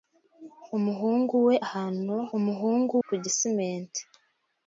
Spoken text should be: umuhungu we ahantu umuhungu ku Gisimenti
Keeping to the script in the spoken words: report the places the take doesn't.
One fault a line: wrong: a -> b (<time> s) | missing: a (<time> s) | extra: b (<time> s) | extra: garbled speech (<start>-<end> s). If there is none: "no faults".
no faults